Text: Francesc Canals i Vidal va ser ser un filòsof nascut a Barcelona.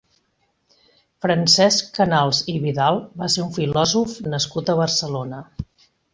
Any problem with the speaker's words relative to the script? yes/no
yes